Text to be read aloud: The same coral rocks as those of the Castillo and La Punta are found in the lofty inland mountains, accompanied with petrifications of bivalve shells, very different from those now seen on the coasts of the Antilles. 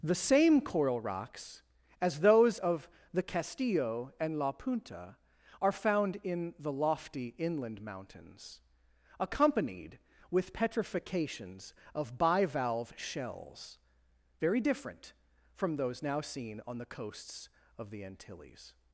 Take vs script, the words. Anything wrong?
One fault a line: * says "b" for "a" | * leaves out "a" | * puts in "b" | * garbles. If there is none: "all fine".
all fine